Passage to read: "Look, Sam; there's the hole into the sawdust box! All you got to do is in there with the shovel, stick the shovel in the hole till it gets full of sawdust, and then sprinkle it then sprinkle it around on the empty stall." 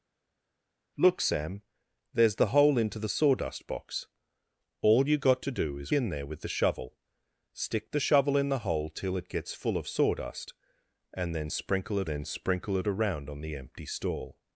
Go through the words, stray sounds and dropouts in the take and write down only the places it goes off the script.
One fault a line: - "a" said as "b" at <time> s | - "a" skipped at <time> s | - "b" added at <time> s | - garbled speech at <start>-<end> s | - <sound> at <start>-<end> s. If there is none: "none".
none